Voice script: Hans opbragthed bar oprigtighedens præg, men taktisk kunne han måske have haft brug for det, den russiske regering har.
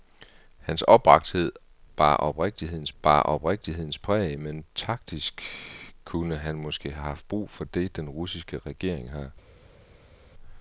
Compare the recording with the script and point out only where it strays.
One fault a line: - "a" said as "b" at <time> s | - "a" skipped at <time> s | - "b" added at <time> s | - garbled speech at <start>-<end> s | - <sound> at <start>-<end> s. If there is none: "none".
- "bar oprigtighedens" added at 3.0 s